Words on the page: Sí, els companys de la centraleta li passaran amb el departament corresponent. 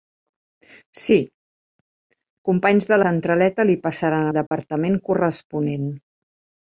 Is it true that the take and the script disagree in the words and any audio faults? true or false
true